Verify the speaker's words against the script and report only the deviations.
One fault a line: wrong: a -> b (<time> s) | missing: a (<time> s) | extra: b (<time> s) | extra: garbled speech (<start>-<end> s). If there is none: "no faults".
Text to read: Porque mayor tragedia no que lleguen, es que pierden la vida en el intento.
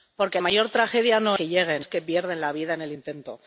no faults